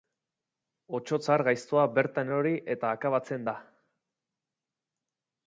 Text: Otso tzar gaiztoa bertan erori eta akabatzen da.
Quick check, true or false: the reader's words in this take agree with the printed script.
true